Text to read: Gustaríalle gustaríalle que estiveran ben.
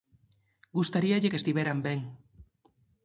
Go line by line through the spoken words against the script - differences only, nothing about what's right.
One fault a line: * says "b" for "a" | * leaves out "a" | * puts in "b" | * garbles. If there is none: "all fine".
* leaves out "gustaríalle"